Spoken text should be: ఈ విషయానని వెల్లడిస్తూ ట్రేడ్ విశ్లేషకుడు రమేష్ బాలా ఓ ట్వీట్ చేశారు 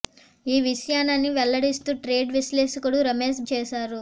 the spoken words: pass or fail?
fail